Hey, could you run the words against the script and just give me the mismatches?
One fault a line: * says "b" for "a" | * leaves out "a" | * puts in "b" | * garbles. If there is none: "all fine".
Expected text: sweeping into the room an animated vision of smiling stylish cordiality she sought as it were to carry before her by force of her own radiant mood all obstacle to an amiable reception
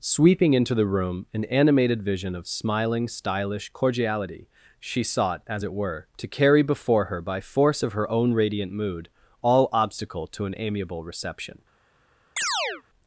all fine